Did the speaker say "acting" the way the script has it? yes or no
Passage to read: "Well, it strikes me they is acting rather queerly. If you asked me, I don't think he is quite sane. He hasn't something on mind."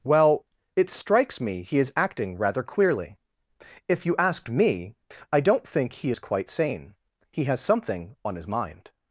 yes